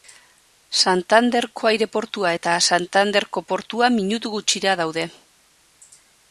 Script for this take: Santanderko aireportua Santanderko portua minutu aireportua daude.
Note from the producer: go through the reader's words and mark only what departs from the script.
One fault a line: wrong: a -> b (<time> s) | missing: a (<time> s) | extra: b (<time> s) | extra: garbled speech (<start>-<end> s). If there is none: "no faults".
extra: eta (2.4 s)
wrong: aireportua -> gutxira (4.4 s)